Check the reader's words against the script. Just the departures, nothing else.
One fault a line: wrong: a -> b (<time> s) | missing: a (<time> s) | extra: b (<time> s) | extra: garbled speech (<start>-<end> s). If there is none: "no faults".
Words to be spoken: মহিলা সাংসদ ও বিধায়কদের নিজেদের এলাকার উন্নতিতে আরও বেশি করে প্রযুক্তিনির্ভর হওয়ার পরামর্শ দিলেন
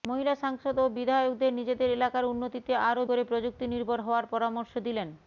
missing: বেশি (3.0 s)